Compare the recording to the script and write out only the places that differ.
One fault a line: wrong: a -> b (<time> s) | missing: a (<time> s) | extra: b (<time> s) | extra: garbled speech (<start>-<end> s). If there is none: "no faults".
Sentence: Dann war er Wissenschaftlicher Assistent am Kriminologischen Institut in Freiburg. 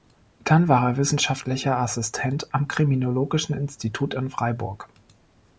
no faults